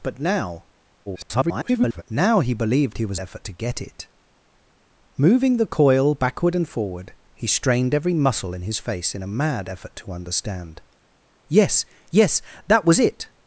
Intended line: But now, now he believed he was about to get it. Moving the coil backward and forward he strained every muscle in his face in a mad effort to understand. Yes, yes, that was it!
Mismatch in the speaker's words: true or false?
true